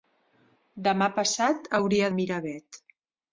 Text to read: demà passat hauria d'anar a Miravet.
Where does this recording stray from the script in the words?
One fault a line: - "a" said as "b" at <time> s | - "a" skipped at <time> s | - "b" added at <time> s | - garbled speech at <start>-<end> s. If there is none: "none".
- "d'anar" skipped at 2.1 s